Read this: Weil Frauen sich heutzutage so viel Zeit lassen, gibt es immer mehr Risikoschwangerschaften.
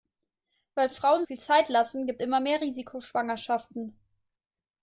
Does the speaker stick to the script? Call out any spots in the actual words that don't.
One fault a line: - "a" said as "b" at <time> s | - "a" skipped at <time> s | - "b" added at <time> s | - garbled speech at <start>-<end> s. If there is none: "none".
- "sich heutzutage so" skipped at 1.2 s
- "es" skipped at 2.2 s